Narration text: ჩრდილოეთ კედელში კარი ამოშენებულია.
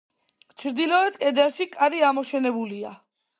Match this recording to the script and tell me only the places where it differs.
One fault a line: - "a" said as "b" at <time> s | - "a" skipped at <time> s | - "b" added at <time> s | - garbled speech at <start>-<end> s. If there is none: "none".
none